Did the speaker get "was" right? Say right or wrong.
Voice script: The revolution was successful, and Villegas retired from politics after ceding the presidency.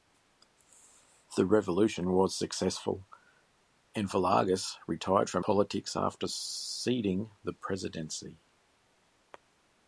right